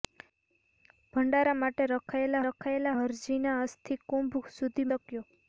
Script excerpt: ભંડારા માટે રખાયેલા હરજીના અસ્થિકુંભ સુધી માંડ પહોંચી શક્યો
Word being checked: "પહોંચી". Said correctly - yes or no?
no